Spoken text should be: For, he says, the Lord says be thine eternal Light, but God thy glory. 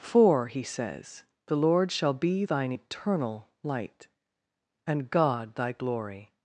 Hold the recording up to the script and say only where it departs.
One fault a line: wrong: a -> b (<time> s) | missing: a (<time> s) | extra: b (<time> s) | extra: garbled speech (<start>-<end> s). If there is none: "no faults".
wrong: says -> shall (1.9 s)
wrong: but -> and (4.8 s)